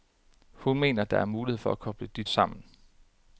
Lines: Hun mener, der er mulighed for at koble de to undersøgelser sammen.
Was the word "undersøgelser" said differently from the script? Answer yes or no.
yes